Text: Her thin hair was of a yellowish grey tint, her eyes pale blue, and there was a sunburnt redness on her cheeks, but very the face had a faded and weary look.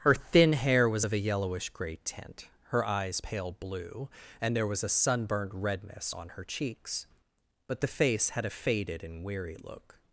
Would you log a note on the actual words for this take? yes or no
yes